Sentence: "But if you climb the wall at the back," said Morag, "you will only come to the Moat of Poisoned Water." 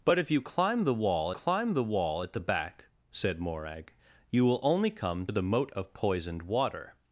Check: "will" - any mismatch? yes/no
no